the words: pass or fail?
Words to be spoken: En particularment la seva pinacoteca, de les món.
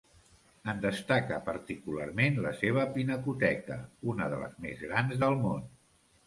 fail